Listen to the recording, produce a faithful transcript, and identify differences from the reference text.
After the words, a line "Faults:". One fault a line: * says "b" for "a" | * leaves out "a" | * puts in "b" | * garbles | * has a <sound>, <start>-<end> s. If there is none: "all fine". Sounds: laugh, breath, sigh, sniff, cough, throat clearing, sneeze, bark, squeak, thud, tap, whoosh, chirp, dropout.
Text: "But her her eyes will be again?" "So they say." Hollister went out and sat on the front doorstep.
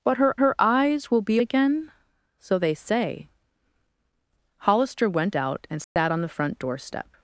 "But her her eyes will be again?" "So they say." Hollister went out and sat on the front doorstep.
Faults:
* has a dropout, 5.8-6.0 s